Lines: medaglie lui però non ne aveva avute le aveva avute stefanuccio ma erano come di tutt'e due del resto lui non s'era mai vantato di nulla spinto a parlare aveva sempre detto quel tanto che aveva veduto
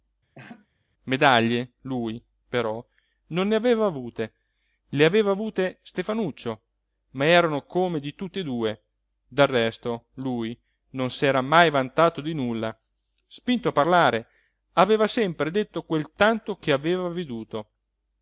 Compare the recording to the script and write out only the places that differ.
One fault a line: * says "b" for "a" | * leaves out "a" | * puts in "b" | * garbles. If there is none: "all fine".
all fine